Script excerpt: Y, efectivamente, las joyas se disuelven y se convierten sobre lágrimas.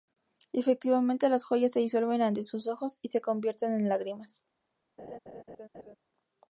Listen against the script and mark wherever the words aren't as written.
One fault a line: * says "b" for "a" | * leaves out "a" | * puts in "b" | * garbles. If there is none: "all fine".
* puts in "ante sus ojos"
* says "en" for "sobre"